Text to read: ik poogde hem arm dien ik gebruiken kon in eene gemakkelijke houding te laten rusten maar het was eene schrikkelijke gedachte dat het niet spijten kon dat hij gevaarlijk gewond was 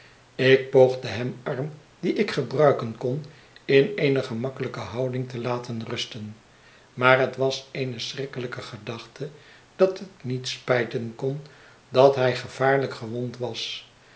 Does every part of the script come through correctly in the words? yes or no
yes